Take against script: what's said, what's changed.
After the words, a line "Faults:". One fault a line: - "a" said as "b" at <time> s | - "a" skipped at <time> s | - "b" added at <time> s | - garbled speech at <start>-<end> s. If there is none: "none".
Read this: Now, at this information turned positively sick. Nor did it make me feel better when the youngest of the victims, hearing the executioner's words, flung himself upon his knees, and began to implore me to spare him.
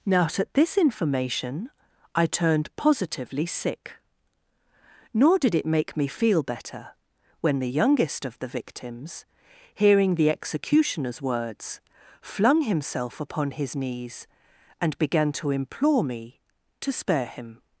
Now, at this information I turned positively sick. Nor did it make me feel better when the youngest of the victims, hearing the executioner's words, flung himself upon his knees, and began to implore me to spare him.
Faults:
- "I" added at 2.1 s